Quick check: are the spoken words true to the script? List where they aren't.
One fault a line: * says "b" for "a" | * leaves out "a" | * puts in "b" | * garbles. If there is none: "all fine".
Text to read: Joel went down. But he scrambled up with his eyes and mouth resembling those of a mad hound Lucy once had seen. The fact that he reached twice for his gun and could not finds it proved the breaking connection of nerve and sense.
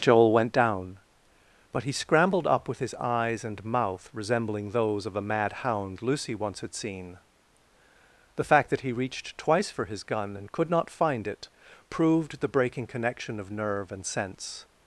* says "find" for "finds"